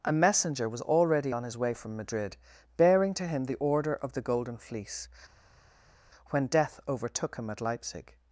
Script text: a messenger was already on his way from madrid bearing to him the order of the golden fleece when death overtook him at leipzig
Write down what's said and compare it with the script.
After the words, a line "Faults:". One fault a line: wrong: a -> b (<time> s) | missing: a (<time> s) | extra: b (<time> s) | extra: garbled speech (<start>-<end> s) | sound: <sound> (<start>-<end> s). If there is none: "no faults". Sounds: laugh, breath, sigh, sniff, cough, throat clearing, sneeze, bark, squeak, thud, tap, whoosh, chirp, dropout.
a messenger was already on his way from madrid bearing to him the order of the golden fleece when death overtook him at leipzig
Faults:
no faults